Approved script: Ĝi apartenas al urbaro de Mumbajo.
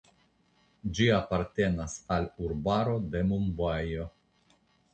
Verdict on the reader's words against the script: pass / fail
pass